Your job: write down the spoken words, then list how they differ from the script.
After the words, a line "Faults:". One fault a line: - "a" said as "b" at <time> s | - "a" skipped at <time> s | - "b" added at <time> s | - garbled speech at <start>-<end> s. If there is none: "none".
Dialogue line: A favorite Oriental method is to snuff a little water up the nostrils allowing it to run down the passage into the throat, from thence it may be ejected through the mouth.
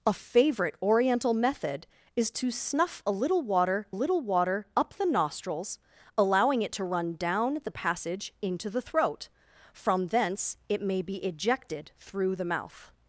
A favorite Oriental method is to snuff a little water little water up the nostrils allowing it to run down the passage into the throat, from thence it may be ejected through the mouth.
Faults:
- "little water" added at 3.9 s